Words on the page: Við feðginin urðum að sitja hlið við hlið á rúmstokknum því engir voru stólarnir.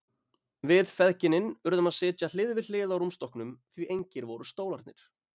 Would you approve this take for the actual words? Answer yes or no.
yes